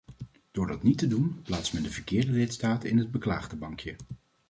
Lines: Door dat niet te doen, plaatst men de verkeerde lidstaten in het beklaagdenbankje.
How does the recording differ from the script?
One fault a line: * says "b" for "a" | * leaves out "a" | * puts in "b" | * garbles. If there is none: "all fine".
all fine